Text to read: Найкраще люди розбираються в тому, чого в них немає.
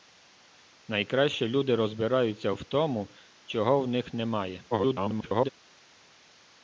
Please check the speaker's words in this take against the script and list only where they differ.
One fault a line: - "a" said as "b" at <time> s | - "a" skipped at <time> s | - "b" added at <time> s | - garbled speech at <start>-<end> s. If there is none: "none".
- garbled speech at 4.7-5.5 s